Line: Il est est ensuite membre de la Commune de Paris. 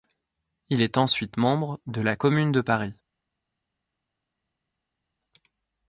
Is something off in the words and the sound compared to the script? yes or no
yes